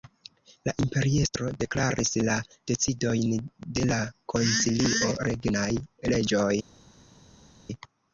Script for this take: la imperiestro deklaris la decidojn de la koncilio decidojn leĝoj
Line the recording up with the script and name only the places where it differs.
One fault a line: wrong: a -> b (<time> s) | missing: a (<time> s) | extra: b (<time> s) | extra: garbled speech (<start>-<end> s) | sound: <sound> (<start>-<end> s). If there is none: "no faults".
wrong: decidojn -> regnaj (5.3 s)